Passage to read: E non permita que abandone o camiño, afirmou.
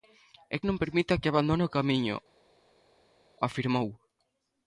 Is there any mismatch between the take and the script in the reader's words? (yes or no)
no